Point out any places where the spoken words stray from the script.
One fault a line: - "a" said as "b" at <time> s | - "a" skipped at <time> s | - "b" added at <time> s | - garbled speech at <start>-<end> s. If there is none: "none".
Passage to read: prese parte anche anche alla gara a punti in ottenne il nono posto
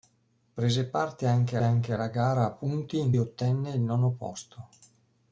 none